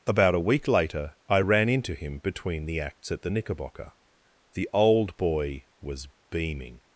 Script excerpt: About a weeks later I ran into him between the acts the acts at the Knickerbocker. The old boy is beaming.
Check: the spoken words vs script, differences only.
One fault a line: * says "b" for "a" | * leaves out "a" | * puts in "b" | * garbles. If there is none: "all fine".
* says "week" for "weeks"
* leaves out "the acts"
* says "was" for "is"